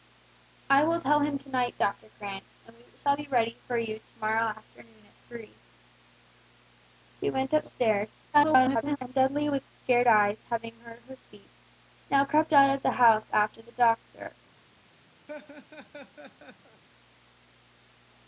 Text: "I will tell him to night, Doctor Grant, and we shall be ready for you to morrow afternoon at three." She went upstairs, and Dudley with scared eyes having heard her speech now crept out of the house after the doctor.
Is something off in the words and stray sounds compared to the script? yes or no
yes